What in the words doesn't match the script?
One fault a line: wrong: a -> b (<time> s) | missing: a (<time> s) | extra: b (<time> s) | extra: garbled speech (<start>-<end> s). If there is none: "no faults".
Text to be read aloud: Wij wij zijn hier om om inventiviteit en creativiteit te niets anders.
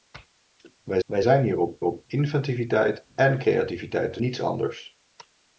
no faults